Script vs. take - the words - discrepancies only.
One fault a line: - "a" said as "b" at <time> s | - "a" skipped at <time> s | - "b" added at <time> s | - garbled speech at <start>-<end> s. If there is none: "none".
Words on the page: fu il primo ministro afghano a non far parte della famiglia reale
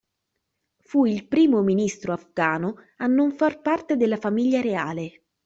none